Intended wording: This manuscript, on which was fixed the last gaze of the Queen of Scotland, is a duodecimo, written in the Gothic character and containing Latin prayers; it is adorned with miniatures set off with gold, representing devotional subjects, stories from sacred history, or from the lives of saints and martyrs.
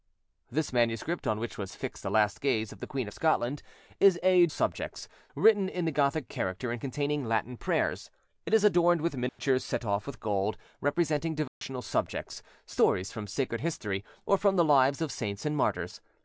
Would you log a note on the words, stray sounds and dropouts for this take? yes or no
yes